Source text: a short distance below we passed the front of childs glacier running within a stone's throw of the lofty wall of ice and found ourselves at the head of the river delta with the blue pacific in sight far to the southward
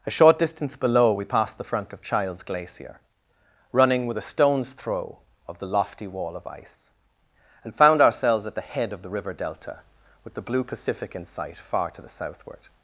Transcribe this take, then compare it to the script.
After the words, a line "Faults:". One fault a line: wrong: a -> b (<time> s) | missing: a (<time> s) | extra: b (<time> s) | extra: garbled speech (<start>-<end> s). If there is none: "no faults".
a short distance below we passed the front of childs glacier running with a stone's throw of the lofty wall of ice and found ourselves at the head of the river delta with the blue pacific in sight far to the southward
Faults:
wrong: within -> with (4.1 s)